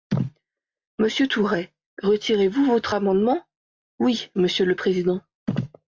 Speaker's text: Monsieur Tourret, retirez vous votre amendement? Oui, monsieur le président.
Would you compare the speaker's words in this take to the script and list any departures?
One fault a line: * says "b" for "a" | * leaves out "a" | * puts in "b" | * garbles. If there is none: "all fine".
all fine